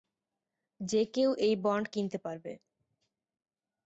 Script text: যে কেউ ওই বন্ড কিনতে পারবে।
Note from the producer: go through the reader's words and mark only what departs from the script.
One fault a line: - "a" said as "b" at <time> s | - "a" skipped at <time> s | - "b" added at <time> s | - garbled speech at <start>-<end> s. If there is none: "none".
- "ওই" said as "এই" at 1.4 s